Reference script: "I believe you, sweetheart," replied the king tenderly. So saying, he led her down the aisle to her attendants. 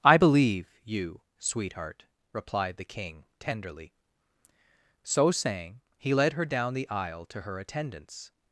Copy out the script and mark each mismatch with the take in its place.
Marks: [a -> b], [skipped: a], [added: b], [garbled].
"I believe you, sweetheart," replied the king tenderly. So saying, he led her down the aisle to her attendants.